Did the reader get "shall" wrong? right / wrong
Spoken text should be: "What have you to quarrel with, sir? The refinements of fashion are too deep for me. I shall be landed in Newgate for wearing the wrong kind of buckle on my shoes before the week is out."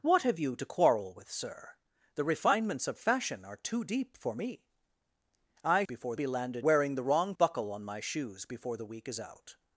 wrong